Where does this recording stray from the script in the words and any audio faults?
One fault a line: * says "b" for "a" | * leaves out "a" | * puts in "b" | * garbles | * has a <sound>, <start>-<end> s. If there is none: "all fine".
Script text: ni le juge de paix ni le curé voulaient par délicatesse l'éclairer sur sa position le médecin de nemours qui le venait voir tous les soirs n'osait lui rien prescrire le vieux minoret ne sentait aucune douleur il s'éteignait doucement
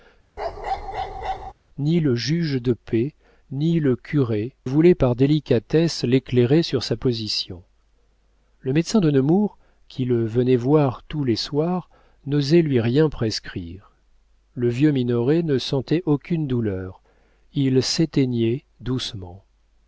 * has a bark, 0.4-1.5 s